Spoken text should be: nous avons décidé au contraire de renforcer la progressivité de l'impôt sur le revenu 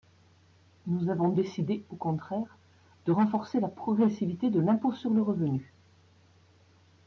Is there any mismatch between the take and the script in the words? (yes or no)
no